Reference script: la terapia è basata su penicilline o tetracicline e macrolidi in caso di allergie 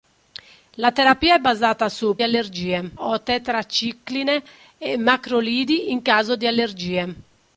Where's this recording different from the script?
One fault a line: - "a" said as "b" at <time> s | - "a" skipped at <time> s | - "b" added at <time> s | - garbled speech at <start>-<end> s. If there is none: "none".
- "penicilline" said as "allergie" at 2.2 s